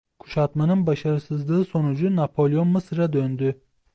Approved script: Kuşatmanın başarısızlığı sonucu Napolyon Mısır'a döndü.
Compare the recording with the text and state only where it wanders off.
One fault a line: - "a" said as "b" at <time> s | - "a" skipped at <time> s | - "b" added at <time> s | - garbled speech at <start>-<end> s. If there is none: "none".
none